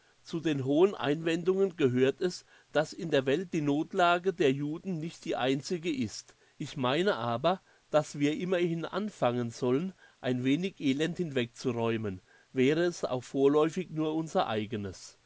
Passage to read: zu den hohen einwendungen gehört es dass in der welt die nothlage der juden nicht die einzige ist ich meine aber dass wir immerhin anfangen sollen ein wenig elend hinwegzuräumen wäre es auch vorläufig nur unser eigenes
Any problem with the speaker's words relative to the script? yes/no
no